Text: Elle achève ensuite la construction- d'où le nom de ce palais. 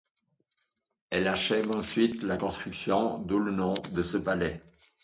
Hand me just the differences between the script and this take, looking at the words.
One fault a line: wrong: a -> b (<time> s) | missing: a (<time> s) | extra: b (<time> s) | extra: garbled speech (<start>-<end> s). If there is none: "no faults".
no faults